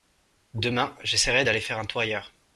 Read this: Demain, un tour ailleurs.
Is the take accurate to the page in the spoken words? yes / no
no